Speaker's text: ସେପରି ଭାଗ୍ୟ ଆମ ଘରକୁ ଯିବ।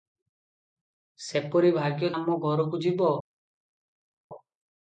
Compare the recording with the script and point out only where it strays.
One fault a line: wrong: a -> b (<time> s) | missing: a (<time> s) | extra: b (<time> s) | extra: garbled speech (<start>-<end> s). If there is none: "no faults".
no faults